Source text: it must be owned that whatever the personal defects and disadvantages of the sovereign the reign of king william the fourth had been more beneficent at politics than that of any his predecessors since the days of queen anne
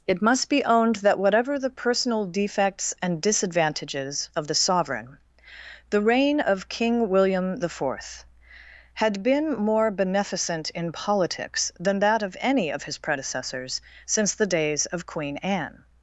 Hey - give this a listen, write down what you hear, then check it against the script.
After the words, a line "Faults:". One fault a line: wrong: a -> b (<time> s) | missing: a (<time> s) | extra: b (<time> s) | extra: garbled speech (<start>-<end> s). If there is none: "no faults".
it must be owned that whatever the personal defects and disadvantages of the sovereign the reign of king william the fourth had been more beneficent in politics than that of any of his predecessors since the days of queen anne
Faults:
wrong: at -> in (10.7 s)
extra: of (12.7 s)